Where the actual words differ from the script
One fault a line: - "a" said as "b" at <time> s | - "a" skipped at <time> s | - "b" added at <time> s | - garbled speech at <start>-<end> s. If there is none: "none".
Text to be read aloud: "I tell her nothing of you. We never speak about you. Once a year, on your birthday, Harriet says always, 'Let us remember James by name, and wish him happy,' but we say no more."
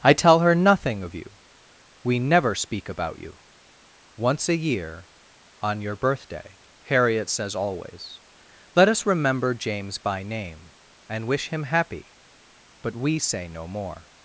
none